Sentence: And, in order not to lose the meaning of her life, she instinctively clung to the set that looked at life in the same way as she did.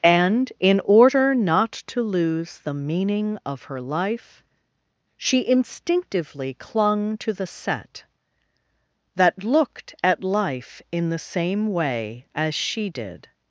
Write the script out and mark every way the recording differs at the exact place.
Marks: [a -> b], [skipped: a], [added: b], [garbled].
And, in order not to lose the meaning of her life, she instinctively clung to the set that looked at life in the same way as she did.